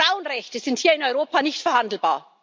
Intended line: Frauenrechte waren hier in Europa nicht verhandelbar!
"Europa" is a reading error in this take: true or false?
false